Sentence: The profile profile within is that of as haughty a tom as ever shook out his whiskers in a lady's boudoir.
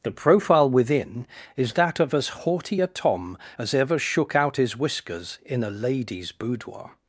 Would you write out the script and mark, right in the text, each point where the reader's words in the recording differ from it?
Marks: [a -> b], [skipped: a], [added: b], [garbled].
The profile [skipped: profile] within is that of as haughty a tom as ever shook out his whiskers in a lady's boudoir.